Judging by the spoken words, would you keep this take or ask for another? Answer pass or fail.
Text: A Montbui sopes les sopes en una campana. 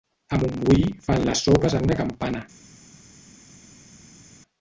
fail